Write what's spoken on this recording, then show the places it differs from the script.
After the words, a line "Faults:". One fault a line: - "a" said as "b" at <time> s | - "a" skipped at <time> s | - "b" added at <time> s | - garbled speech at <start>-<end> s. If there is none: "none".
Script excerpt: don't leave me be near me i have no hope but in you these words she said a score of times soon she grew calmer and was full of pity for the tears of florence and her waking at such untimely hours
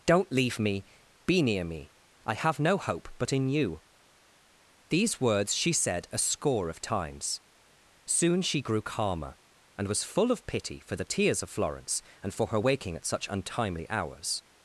don't leave me be near me i have no hope but in you these words she said a score of times soon she grew calmer and was full of pity for the tears of florence and for her waking at such untimely hours
Faults:
- "for" added at 12.3 s